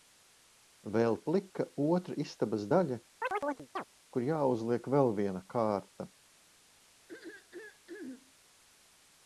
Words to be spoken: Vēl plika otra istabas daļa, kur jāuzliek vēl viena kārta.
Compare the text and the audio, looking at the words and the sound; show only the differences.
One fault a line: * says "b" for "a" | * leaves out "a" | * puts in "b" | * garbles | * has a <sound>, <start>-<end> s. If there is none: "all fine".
* has a chirp, 3.2-3.8 s
* has a throat clearing, 7.1-8.3 s